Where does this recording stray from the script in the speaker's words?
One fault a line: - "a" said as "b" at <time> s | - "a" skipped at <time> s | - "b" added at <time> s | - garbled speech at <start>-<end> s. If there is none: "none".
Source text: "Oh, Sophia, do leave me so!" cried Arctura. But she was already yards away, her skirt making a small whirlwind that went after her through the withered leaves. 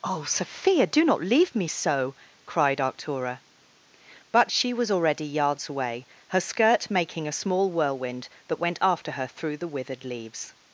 - "not" added at 1.1 s